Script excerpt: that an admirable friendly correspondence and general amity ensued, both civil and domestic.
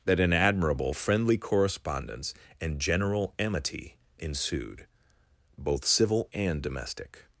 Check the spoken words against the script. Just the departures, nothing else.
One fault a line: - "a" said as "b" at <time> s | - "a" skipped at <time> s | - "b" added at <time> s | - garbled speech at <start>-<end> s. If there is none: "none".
none